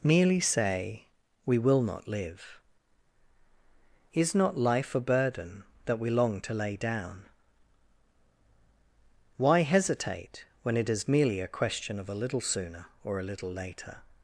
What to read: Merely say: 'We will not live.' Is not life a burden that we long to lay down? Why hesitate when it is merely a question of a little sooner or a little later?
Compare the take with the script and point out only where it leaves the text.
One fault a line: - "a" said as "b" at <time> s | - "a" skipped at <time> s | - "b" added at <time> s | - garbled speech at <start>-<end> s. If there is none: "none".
none